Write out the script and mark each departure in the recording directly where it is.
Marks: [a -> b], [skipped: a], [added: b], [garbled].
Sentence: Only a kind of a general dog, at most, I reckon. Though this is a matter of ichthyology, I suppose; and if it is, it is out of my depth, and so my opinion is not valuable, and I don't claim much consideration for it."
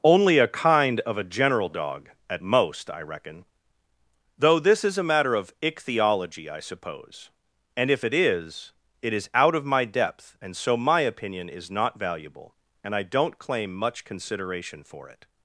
Only a kind of a general dog, at most, I reckon. Though this is a matter of ichthyology, I suppose; and if it is, it is out of my depth, and so my opinion is not valuable, and I don't claim much consideration for it."